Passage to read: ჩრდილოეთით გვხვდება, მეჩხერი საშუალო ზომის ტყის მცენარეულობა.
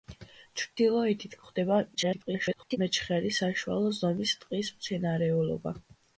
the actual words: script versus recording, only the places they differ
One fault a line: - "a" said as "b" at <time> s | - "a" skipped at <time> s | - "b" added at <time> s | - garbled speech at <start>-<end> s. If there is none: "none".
- garbled speech at 1.9-2.8 s